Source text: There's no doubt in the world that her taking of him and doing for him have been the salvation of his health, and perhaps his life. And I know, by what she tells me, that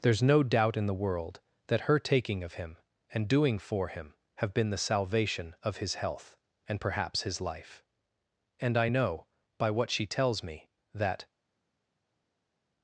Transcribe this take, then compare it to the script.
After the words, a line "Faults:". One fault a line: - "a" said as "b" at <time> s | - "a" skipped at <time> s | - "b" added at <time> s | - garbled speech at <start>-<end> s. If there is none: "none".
There's no doubt in the world that her taking of him and doing for him have been the salvation of his health, and perhaps his life. And I know, by what she tells me, that
Faults:
none